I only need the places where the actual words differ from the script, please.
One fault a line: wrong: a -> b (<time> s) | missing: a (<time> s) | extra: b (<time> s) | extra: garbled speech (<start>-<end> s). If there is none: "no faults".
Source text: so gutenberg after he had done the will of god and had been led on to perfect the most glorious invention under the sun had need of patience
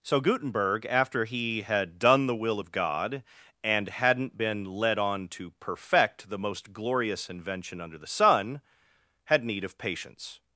wrong: had -> hadn't (3.9 s)